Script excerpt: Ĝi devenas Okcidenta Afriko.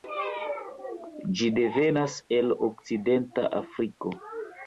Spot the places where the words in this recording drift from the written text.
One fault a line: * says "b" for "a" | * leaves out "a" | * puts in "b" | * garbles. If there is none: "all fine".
* puts in "el"